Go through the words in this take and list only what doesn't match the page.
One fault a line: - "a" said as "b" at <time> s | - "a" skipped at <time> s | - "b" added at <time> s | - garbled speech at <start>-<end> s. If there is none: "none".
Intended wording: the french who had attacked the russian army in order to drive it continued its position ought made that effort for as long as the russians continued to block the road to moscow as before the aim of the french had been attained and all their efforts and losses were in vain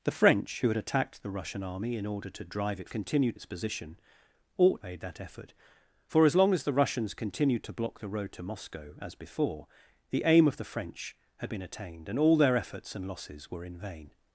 none